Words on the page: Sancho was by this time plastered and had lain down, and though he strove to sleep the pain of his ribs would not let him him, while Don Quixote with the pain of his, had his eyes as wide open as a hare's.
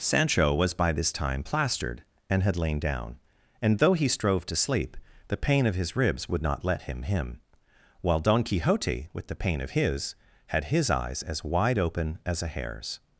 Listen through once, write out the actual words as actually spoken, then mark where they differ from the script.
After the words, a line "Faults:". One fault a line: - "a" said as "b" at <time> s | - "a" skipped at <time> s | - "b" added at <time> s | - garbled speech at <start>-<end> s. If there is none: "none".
Sancho was by this time plastered and had lain down, and though he strove to sleep the pain of his ribs would not let him him, while Don Quixote with the pain of his, had his eyes as wide open as a hare's.
Faults:
none